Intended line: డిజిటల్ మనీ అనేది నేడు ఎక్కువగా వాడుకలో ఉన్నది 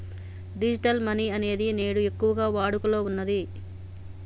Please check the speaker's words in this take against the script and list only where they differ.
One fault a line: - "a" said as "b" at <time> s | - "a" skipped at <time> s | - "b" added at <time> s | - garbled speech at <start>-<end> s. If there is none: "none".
none